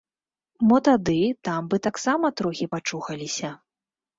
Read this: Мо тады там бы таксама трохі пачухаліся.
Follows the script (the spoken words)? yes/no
yes